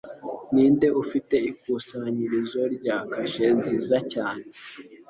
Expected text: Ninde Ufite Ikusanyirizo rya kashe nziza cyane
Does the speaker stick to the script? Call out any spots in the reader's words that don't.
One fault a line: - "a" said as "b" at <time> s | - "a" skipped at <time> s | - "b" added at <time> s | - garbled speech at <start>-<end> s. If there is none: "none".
none